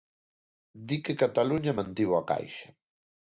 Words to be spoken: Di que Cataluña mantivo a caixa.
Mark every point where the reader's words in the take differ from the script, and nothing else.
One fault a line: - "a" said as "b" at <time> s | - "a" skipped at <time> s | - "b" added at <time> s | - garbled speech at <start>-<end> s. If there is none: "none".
none